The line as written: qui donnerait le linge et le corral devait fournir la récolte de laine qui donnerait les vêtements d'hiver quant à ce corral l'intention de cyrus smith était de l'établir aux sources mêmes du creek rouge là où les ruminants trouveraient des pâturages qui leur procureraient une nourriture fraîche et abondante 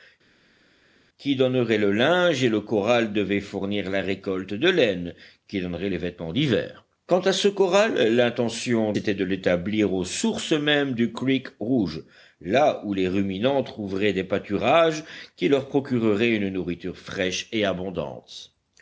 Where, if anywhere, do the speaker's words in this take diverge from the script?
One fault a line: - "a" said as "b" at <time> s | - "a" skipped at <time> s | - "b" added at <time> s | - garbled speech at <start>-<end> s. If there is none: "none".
- "de cyrus smith" skipped at 8.9 s